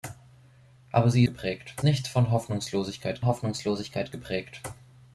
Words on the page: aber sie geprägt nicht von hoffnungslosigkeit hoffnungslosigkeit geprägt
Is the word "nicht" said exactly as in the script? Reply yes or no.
yes